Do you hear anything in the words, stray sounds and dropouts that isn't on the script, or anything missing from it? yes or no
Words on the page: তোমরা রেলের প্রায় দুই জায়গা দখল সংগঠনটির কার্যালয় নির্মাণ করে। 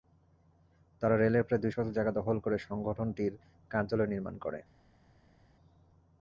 yes